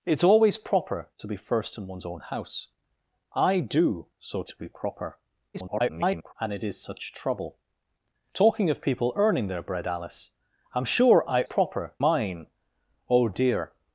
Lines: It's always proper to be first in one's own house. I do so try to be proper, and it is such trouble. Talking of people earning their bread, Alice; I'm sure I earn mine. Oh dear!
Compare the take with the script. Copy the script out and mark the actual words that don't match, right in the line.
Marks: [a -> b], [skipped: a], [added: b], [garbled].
It's always proper to be first in one's own house. I do so [skipped: try] to be proper, [garbled] and it is such trouble. Talking of people earning their bread, Alice; I'm sure I [earn -> proper] mine. Oh dear!